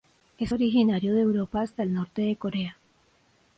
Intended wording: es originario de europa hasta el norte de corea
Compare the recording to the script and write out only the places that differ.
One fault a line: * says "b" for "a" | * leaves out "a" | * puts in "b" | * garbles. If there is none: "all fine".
all fine